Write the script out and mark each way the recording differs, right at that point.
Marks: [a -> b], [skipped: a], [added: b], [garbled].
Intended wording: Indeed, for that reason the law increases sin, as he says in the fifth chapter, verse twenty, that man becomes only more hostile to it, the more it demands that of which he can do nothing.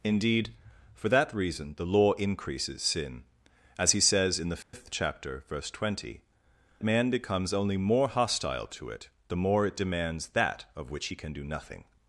Indeed, for that reason the law increases sin, as he says in the fifth chapter, verse twenty, [skipped: that] man becomes only more hostile to it, the more it demands that of which he can do nothing.